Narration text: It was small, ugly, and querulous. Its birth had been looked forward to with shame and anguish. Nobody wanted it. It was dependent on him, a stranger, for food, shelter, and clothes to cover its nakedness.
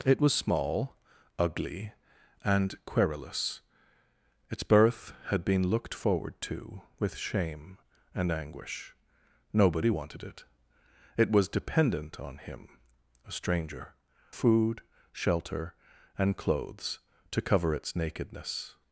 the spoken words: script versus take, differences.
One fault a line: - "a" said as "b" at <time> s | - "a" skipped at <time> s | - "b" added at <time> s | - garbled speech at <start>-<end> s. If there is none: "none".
- "for" skipped at 13.9 s